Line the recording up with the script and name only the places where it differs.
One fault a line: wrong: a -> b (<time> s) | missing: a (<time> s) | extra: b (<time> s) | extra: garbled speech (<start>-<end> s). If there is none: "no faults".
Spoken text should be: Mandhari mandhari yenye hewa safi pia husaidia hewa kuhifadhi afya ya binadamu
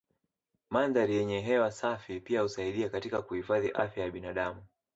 missing: mandhari (1.1 s)
wrong: hewa -> katika (2.9 s)